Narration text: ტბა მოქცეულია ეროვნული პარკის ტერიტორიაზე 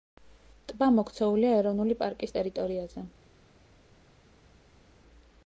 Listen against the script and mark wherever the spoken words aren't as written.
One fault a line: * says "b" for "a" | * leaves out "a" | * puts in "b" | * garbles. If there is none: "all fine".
all fine